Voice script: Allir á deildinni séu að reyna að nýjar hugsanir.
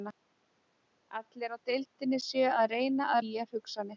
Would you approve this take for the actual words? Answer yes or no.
yes